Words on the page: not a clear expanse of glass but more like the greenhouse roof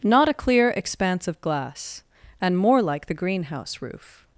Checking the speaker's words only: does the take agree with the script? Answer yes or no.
no